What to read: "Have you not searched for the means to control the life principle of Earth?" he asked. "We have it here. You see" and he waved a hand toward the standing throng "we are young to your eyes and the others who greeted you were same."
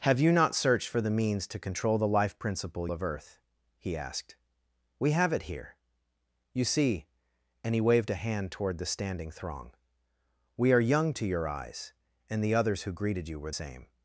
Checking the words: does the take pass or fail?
pass